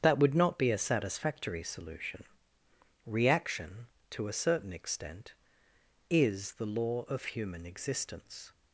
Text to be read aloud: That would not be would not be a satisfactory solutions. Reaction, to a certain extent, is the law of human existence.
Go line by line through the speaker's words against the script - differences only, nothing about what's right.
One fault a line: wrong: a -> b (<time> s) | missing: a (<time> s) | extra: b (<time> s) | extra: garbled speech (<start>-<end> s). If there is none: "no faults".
missing: would not be (0.7 s)
wrong: solutions -> solution (1.6 s)